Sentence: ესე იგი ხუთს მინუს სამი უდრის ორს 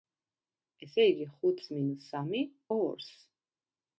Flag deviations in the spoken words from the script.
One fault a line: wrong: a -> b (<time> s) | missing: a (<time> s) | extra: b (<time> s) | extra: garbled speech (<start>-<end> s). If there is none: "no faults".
missing: უდრის (2.4 s)